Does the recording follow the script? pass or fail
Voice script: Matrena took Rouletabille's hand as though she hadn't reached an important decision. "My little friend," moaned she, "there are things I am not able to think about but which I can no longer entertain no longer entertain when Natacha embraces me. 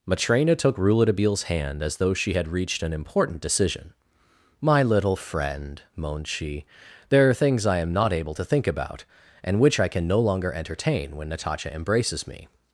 fail